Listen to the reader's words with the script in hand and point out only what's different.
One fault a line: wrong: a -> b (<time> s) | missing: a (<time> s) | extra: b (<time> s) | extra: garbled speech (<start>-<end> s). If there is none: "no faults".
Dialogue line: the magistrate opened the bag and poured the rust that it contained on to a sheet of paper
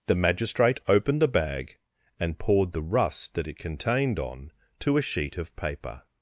no faults